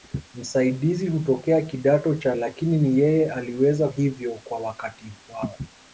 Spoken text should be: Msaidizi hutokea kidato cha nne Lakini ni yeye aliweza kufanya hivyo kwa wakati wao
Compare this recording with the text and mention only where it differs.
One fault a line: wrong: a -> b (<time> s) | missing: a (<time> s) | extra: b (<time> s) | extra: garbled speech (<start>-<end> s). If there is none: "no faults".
missing: nne (2.4 s)
missing: kufanya (3.9 s)